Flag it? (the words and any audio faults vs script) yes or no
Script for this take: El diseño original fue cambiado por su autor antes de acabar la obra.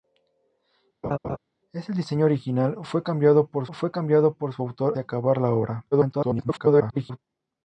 yes